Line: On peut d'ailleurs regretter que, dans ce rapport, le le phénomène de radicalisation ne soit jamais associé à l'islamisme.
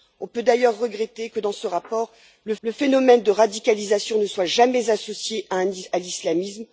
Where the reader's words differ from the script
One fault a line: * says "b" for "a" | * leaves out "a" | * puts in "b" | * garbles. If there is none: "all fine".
all fine